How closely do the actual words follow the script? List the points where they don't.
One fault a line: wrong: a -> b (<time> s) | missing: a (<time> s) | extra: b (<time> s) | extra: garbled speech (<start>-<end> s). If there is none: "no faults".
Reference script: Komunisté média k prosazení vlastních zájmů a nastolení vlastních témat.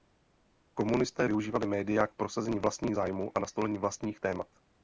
extra: využívali (1.3 s)